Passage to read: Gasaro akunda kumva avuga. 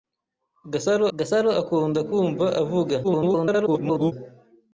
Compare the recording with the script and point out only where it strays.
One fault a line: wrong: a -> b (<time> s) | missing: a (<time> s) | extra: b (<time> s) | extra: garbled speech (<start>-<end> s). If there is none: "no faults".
extra: gasaro (1.2 s)
extra: garbled speech (3.0-4.1 s)